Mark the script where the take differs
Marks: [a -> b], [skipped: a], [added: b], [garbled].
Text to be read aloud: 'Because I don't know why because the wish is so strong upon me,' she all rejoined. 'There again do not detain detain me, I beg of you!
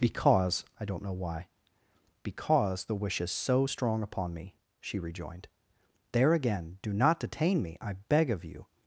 'Because I don't know why because the wish is so strong upon me,' she [skipped: all] rejoined. 'There again do not detain [skipped: detain] me, I beg of you!